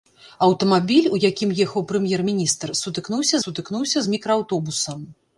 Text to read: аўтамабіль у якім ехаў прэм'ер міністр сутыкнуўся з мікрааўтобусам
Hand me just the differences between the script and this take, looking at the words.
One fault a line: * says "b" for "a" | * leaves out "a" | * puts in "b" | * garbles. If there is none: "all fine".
* puts in "сутыкнуўся"